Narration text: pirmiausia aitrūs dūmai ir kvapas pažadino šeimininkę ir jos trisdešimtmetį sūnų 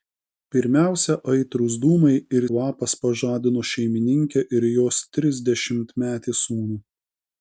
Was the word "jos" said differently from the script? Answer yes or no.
no